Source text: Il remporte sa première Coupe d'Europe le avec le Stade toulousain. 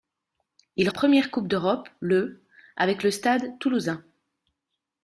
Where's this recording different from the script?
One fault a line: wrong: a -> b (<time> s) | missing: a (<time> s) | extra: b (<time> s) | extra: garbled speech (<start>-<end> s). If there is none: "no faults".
missing: remporte sa (0.9 s)